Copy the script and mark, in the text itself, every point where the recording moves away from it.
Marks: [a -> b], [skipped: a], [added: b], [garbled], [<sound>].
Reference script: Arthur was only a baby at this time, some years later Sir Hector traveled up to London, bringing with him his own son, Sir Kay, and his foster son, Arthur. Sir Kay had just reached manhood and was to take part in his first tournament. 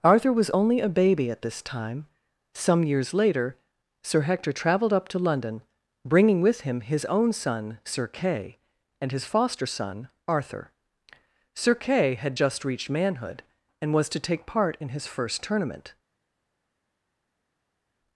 Arthur was only a baby at this time, some years later Sir Hector traveled up to London, bringing with him his own son, Sir Kay, and his foster son, Arthur. Sir Kay had just reached manhood and was to take part in his first tournament.